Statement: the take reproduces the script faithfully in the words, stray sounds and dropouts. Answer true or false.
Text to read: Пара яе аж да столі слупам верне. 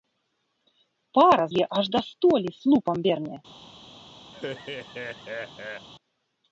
false